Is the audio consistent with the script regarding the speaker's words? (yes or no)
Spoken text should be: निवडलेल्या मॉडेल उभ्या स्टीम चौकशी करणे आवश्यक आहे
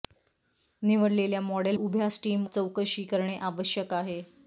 yes